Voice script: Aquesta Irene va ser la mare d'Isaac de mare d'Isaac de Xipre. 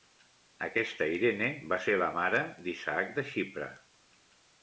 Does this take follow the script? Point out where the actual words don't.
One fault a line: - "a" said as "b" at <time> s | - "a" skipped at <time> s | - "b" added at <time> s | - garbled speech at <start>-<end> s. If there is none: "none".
- "mare d'Isaac de" skipped at 3.3 s